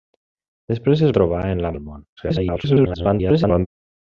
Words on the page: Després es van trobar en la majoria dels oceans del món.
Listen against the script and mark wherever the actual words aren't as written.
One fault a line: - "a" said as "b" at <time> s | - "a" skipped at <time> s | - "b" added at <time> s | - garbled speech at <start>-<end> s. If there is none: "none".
- "van" skipped at 1.1 s
- "majoria dels oceans" skipped at 1.7 s
- garbled speech at 2.2-3.7 s